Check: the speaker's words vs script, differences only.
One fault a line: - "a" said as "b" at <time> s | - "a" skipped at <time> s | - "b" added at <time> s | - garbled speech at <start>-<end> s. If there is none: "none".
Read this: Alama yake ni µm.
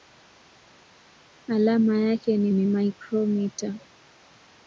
- "ni" added at 2.5 s